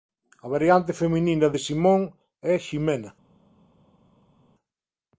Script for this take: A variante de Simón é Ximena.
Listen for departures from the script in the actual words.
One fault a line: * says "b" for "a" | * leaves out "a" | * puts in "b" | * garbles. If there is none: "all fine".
* puts in "feminina"